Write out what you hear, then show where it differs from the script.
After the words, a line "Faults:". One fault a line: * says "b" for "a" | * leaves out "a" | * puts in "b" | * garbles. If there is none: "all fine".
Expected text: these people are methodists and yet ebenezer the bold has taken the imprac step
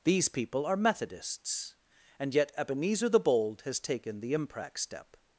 these people are methodists and yet ebenezer the bold has taken the imprac step
Faults:
all fine